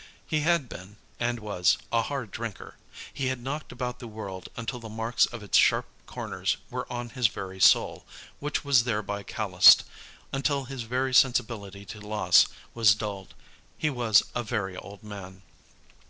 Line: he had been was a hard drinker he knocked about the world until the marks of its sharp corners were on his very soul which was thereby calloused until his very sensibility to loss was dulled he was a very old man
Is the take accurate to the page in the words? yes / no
no